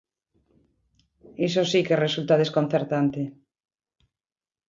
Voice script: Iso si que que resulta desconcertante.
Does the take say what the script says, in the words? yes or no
no